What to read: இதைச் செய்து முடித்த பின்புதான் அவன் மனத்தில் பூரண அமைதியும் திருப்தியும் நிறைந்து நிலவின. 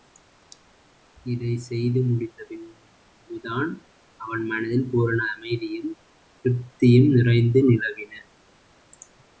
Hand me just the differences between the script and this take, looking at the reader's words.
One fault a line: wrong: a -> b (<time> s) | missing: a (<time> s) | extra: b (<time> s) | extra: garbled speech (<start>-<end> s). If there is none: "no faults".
no faults